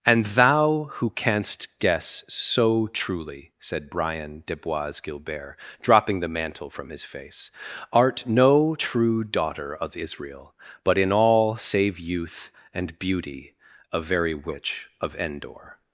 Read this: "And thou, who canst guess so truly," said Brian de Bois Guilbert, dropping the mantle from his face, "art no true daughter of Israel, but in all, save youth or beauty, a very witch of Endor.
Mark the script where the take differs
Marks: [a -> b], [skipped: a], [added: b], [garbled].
"And thou, who canst guess so truly," said Brian de Bois Guilbert, dropping the mantle from his face, "art no true daughter of Israel, but in all, save youth [or -> and] beauty, a very witch of Endor.